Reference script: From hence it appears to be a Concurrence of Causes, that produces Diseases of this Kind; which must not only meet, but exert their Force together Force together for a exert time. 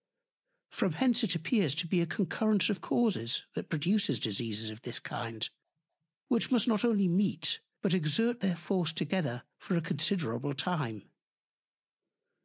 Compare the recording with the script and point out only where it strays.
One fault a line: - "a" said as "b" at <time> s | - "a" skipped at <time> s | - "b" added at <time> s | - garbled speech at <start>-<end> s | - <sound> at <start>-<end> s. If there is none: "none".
- "Force together" skipped at 9.4 s
- "exert" said as "considerable" at 9.8 s